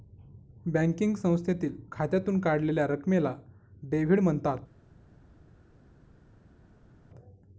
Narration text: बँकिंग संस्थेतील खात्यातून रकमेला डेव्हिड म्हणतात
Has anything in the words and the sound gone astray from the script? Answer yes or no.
yes